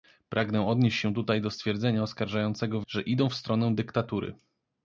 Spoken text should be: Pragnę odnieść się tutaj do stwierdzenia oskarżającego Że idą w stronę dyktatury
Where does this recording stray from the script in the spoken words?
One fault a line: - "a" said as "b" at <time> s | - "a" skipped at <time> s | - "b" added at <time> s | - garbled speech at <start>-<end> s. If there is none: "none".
none